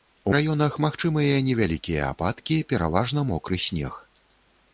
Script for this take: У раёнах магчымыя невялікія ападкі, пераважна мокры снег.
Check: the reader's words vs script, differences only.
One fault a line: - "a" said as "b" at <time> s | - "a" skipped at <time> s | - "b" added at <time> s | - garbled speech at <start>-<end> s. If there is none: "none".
none